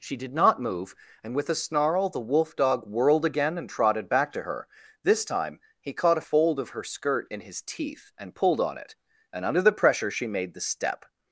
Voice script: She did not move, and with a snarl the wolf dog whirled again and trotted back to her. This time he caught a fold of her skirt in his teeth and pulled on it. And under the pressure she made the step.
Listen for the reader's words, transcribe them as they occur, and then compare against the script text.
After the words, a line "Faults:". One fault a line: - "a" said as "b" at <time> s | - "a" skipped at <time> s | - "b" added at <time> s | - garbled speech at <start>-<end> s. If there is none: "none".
She did not move, and with a snarl the wolf dog whirled again and trotted back to her. This time he caught a fold of her skirt in his teeth and pulled on it. And under the pressure she made the step.
Faults:
none